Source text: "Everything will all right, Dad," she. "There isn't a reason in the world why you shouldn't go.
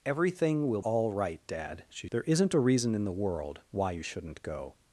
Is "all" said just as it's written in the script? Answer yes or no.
yes